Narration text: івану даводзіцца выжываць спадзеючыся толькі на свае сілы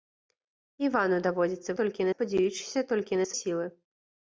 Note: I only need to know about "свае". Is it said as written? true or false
false